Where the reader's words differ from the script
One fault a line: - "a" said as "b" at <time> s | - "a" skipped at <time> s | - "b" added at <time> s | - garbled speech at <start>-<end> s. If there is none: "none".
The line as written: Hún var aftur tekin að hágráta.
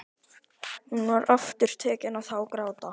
none